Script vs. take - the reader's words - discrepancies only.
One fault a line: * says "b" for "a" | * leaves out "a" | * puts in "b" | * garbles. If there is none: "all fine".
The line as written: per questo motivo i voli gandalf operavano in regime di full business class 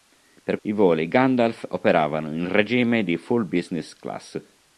* leaves out "questo motivo"